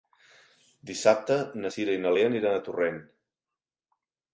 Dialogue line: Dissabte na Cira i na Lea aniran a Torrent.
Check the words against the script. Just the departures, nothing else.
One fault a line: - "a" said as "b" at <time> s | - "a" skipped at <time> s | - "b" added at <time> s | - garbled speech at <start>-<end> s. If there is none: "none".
none